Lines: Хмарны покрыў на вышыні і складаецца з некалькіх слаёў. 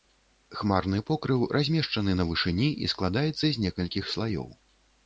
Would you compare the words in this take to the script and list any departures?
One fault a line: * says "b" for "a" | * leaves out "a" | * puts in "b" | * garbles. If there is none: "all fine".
* puts in "размешчаны"